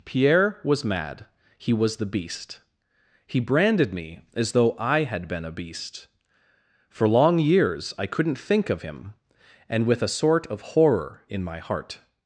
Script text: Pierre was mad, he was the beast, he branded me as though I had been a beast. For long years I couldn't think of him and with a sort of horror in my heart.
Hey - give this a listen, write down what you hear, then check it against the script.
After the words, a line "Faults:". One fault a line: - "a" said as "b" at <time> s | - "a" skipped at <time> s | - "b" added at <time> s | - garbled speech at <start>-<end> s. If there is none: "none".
Pierre was mad, he was the beast, he branded me as though I had been a beast. For long years I couldn't think of him and with a sort of horror in my heart.
Faults:
none